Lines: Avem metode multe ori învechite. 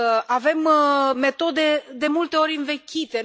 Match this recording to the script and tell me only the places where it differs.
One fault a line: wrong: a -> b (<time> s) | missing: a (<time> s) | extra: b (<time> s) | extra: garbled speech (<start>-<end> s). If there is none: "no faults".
extra: de (1.9 s)